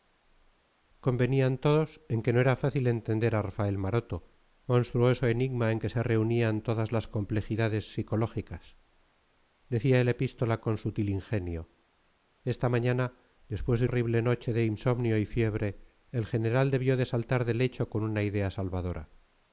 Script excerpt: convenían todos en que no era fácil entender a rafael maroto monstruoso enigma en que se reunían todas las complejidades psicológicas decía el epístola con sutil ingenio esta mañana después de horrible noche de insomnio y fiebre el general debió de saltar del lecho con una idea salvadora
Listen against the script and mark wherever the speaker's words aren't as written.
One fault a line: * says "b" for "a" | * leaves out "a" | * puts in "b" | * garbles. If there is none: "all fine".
all fine